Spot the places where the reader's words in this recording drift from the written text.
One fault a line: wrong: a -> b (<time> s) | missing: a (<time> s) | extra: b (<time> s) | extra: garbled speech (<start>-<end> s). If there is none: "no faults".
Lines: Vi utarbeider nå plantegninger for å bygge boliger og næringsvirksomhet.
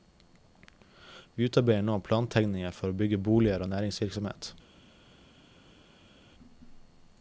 no faults